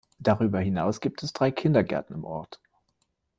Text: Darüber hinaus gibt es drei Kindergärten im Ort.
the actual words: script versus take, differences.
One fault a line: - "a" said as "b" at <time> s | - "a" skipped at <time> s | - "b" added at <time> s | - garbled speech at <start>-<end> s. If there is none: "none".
none